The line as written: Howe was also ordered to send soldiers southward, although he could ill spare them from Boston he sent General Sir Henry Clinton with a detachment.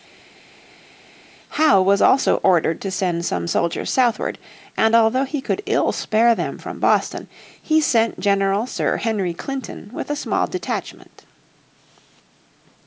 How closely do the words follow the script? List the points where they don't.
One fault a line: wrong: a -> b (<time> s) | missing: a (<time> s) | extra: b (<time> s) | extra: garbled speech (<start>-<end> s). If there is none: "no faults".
extra: some (3.2 s)
extra: and (4.8 s)
extra: small (10.2 s)